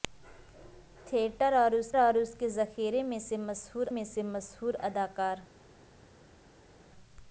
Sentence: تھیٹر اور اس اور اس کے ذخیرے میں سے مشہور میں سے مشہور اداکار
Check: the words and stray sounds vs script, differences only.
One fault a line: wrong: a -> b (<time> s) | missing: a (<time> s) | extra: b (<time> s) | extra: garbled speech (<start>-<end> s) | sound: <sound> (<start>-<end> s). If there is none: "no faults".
no faults